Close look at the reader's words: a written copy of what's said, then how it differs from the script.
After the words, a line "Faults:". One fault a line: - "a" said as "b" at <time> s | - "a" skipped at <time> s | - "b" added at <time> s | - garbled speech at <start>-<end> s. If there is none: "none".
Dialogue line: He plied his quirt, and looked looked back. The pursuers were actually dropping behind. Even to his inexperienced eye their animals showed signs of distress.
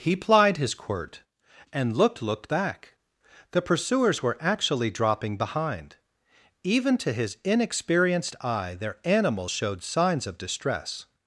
He plied his quirt, and looked looked back. The pursuers were actually dropping behind. Even to his inexperienced eye their animals showed signs of distress.
Faults:
none